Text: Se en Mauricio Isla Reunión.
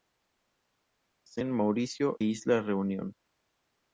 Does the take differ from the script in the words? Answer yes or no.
no